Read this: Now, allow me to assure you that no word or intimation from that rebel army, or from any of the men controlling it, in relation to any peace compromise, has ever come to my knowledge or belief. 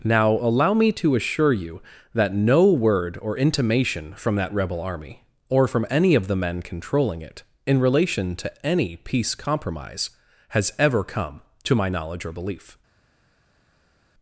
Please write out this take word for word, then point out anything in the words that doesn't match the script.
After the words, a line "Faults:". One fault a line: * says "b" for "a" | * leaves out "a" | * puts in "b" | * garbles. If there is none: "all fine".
Now, allow me to assure you that no word or intimation from that rebel army, or from any of the men controlling it, in relation to any peace compromise, has ever come to my knowledge or belief.
Faults:
all fine